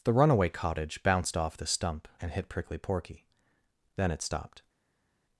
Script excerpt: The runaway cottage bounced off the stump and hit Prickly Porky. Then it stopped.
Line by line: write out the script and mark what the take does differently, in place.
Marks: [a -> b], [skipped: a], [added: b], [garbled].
The runaway cottage bounced off the stump and hit Prickly Porky. Then it stopped.